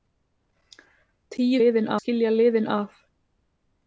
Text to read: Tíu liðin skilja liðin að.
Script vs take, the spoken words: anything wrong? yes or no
no